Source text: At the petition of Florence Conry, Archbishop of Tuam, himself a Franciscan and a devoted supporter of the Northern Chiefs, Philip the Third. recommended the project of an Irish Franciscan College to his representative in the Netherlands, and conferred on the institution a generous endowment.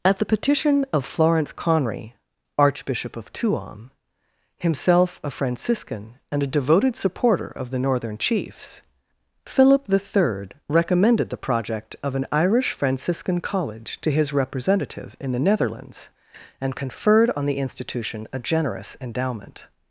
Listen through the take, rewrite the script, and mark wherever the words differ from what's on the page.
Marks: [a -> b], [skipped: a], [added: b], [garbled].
At the petition of Florence Conry, Archbishop of Tuam, himself a Franciscan and a devoted supporter of the Northern Chiefs, Philip the Third. recommended the project of an Irish Franciscan College to his representative in the Netherlands, and conferred on the institution a generous endowment.